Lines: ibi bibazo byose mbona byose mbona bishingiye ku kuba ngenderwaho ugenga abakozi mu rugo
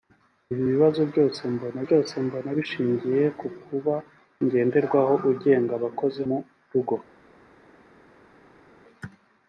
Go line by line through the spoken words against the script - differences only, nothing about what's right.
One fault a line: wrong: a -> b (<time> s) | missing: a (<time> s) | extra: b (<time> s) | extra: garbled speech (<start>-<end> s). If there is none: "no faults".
no faults